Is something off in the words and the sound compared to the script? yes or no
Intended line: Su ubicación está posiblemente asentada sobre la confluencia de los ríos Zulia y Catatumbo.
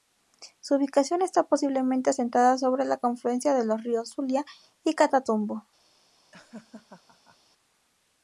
yes